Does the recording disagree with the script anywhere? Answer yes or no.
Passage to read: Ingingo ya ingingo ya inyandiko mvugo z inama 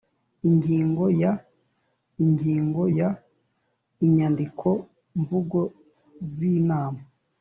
no